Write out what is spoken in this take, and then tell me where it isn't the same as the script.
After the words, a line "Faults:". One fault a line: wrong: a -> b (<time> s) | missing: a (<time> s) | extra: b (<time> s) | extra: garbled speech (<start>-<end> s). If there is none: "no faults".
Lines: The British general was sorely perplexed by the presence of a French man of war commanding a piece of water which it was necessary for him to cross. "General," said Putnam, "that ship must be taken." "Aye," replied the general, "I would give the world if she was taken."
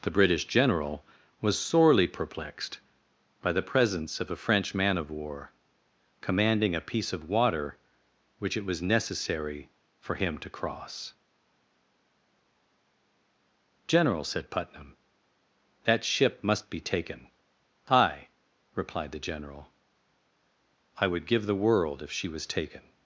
The British general was sorely perplexed by the presence of a French man of war commanding a piece of water which it was necessary for him to cross. "General," said Putnam, "that ship must be taken." "Aye," replied the general, "I would give the world if she was taken."
Faults:
no faults